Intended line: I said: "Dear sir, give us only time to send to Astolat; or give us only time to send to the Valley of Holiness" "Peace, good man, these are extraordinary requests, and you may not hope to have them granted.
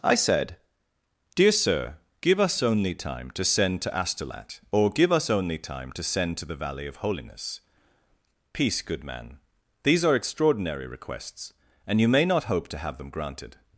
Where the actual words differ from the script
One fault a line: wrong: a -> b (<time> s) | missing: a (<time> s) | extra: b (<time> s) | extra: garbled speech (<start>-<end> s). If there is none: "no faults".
no faults